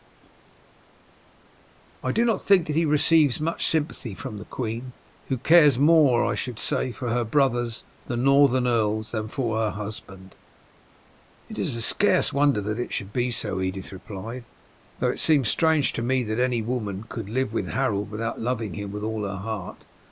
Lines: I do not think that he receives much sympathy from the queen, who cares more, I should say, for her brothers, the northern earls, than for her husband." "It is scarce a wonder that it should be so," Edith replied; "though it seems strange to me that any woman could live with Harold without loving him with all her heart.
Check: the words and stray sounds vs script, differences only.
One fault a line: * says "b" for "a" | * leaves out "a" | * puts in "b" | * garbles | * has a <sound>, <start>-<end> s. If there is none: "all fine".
all fine